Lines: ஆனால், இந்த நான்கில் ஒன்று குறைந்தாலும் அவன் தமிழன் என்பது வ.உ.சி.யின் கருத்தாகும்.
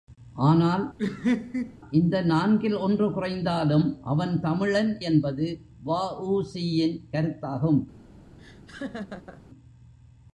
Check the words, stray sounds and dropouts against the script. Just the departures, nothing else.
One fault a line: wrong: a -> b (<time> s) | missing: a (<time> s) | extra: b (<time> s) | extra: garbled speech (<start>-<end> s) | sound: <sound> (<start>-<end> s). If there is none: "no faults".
sound: laugh (1.0-1.8 s)
sound: laugh (8.4-9.4 s)